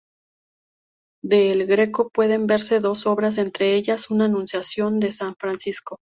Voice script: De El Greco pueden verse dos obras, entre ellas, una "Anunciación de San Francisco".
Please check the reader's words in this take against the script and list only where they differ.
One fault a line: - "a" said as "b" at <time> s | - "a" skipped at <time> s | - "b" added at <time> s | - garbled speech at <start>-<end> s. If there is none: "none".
none